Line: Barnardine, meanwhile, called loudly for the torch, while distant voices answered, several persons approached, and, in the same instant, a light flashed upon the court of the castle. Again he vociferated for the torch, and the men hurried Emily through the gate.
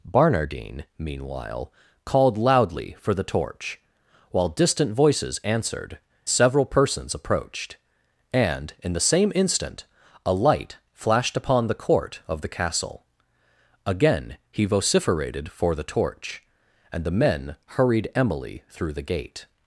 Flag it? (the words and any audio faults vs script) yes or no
no